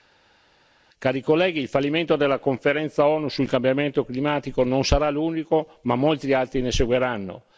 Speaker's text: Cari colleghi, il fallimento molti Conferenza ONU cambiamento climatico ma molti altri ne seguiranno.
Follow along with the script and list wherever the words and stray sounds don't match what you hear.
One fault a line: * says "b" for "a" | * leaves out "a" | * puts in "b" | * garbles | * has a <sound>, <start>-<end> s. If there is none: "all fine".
* says "della" for "molti"
* puts in "sul"
* puts in "non sarà l'unico"